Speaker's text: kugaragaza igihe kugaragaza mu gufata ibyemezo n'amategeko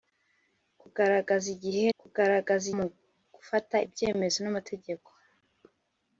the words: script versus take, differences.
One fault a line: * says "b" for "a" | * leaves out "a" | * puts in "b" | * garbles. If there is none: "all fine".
all fine